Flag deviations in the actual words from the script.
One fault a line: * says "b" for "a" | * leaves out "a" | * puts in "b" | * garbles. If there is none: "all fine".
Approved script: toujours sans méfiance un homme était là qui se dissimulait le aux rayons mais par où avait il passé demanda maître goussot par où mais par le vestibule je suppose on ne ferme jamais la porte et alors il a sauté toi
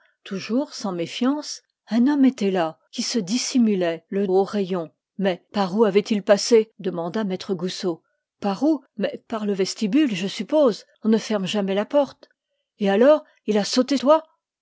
all fine